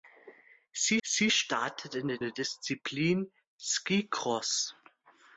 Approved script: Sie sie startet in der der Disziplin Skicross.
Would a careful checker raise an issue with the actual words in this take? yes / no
no